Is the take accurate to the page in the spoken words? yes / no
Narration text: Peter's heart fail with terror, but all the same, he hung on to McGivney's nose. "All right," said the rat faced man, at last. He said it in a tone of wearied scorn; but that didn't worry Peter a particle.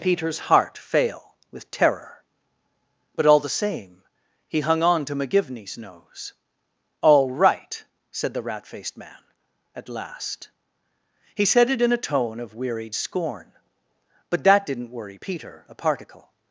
yes